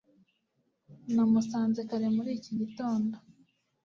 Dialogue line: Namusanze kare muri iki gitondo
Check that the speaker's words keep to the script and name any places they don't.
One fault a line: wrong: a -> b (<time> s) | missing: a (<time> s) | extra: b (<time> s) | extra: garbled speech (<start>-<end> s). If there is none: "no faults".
no faults